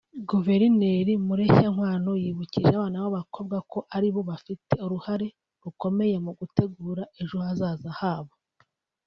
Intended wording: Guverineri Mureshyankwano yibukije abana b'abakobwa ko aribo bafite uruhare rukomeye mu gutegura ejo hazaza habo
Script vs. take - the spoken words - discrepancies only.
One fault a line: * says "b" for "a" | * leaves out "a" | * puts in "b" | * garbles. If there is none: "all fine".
all fine